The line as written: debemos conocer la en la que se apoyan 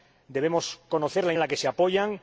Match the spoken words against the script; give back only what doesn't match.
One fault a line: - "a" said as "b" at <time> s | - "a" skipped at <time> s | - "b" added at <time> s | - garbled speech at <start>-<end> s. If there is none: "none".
none